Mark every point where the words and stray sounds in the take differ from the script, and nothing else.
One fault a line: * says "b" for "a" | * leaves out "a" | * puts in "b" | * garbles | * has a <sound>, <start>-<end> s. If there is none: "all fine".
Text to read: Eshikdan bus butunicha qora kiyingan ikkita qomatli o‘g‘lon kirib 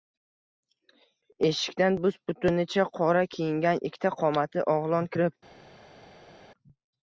all fine